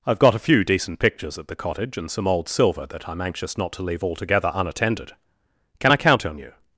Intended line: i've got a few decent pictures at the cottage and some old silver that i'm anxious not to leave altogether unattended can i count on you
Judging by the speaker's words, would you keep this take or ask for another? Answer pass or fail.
pass